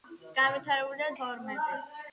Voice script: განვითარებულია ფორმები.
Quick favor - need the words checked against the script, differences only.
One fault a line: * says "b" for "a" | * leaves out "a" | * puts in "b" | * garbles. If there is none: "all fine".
all fine